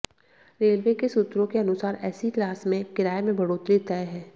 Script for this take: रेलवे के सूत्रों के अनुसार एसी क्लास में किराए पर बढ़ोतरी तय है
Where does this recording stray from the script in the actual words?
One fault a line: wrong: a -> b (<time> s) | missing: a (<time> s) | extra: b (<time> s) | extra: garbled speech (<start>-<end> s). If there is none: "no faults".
wrong: पर -> में (3.2 s)